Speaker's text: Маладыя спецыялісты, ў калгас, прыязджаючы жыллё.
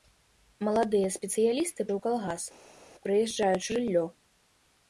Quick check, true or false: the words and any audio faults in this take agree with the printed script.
true